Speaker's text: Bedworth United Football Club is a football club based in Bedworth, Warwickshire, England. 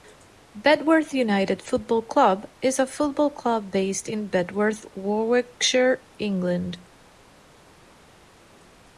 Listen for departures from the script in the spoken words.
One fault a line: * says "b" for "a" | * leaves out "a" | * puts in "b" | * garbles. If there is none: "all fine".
all fine